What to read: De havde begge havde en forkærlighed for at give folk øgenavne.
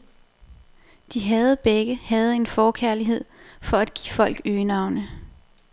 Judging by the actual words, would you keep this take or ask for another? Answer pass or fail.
pass